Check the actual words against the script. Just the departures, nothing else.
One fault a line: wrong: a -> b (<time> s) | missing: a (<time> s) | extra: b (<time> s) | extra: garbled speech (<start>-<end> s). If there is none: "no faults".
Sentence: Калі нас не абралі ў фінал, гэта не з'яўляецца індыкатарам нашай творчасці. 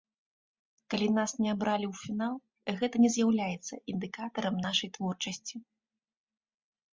no faults